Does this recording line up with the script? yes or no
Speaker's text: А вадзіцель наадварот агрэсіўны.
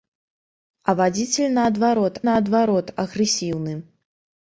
no